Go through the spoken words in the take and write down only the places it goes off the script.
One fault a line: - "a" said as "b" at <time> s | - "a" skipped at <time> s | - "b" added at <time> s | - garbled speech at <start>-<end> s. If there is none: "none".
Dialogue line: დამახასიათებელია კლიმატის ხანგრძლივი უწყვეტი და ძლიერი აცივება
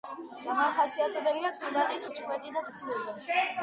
- "ხანგრძლივი" skipped at 2.1 s
- "ძლიერი" skipped at 2.7 s